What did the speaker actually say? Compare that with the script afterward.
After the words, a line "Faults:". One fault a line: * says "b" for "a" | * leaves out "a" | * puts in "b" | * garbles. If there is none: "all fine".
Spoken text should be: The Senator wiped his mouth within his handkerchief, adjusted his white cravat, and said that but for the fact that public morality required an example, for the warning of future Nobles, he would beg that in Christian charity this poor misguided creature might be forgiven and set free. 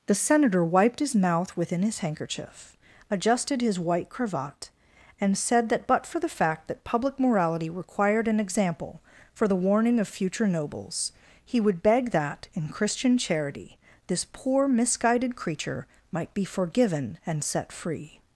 The Senator wiped his mouth within his handkerchief, adjusted his white cravat, and said that but for the fact that public morality required an example, for the warning of future Nobles, he would beg that in Christian charity this poor misguided creature might be forgiven and set free.
Faults:
all fine